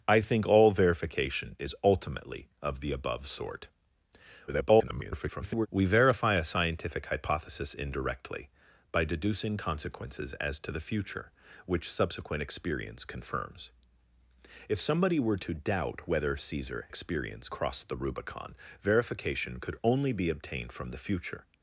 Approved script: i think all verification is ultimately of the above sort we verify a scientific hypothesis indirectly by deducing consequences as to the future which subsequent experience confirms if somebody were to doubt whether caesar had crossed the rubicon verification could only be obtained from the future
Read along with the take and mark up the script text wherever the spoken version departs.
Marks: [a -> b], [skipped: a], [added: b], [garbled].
i think all verification is ultimately of the above sort [garbled] we verify a scientific hypothesis indirectly by deducing consequences as to the future which subsequent experience confirms if somebody were to doubt whether caesar [had -> experience] crossed the rubicon verification could only be obtained from the future